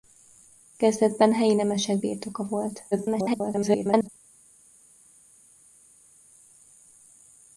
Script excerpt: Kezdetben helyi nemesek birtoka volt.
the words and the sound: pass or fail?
fail